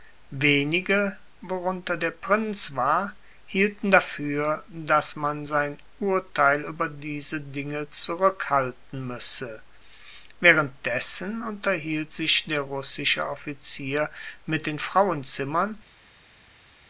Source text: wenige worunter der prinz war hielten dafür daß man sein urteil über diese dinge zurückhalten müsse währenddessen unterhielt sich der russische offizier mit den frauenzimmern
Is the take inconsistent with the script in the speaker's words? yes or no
no